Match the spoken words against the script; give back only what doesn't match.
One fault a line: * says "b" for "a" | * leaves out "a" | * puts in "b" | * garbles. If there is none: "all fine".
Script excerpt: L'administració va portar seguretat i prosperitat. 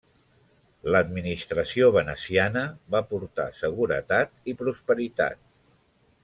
* puts in "veneciana"